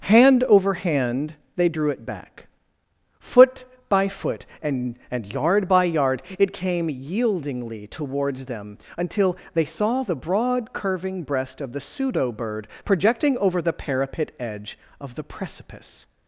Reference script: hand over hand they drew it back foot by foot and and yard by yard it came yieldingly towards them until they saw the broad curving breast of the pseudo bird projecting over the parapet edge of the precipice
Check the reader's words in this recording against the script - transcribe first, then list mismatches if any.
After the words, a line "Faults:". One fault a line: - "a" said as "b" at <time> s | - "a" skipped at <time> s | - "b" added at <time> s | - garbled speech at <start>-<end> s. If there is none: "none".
hand over hand they drew it back foot by foot and and yard by yard it came yieldingly towards them until they saw the broad curving breast of the pseudo bird projecting over the parapet edge of the precipice
Faults:
none